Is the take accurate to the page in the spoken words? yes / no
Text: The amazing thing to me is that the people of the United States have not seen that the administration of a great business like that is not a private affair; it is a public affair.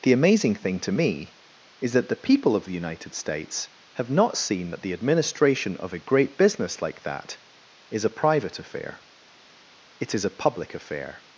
no